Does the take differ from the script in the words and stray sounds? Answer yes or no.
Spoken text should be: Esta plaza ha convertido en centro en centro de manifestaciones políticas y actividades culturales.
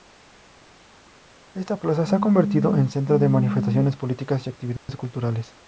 yes